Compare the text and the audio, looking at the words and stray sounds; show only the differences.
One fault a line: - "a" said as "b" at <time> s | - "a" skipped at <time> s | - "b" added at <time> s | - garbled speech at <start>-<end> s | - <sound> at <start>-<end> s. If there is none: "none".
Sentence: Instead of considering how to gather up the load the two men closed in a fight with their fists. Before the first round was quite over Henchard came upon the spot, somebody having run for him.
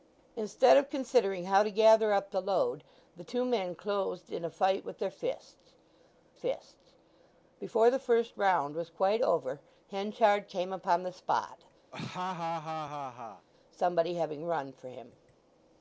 - "fists" added at 6.3 s
- laugh at 11.9-13.5 s